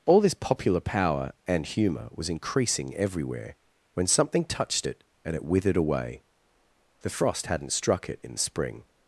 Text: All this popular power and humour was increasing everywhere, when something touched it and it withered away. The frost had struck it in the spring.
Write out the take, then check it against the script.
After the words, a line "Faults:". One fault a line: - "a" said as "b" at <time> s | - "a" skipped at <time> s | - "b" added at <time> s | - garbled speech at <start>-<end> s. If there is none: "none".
All this popular power and humour was increasing everywhere, when something touched it and it withered away. The frost hadn't struck it in the spring.
Faults:
- "had" said as "hadn't" at 7.5 s